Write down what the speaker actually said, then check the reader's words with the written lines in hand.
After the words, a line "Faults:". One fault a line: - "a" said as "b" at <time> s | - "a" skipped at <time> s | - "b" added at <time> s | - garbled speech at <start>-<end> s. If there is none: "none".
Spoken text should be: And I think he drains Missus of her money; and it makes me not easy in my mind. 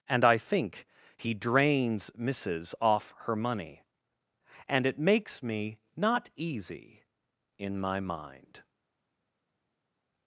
And I think he drains Missus off her money; and it makes me not easy in my mind.
Faults:
- "of" said as "off" at 2.8 s